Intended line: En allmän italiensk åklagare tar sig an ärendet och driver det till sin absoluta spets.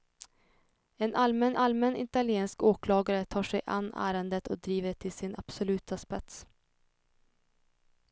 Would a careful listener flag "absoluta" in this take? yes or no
no